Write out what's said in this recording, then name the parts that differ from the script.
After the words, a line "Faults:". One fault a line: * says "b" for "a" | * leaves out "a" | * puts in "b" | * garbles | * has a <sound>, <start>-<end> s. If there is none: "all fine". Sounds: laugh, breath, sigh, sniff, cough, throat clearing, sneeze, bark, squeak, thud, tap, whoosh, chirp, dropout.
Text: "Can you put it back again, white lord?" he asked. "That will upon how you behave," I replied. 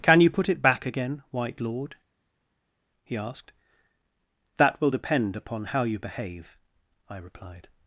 "Can you put it back again, white lord?" he asked. "That will depend upon how you behave," I replied.
Faults:
* puts in "depend"